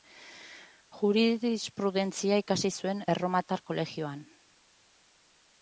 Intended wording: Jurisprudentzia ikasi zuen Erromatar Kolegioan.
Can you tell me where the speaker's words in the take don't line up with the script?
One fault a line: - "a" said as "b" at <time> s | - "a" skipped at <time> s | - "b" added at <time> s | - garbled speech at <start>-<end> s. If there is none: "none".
none